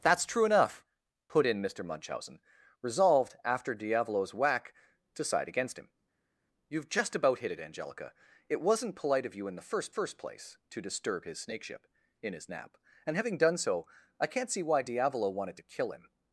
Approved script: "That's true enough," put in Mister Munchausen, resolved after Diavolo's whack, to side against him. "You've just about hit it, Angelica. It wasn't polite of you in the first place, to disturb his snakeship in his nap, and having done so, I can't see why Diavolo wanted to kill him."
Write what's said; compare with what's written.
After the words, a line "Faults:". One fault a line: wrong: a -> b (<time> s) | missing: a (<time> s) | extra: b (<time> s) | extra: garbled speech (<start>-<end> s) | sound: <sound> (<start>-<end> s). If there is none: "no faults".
"That's true enough," put in Mister Munchausen, resolved after Diavolo's whack, to side against him. "You've just about hit it, Angelica. It wasn't polite of you in the first first place, to disturb his snakeship in his nap, and having done so, I can't see why Diavolo wanted to kill him."
Faults:
extra: first (9.9 s)